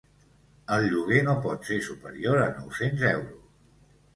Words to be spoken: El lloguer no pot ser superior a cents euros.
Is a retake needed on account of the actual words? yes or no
yes